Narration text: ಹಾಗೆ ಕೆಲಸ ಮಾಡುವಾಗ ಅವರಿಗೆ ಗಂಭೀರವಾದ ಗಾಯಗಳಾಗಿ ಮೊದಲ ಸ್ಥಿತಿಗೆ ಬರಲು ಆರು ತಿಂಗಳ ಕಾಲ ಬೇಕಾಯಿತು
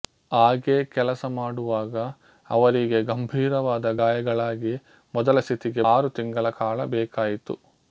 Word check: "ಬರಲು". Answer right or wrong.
wrong